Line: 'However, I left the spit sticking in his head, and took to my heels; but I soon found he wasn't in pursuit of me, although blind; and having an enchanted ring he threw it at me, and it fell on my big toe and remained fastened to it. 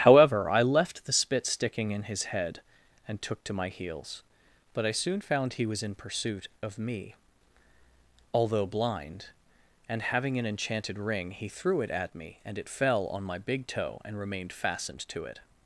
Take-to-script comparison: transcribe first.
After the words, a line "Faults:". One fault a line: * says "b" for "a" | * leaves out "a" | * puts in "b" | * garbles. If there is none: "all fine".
'However, I left the spit sticking in his head, and took to my heels; but I soon found he was in pursuit of me, although blind; and having an enchanted ring he threw it at me, and it fell on my big toe and remained fastened to it.
Faults:
* says "was" for "wasn't"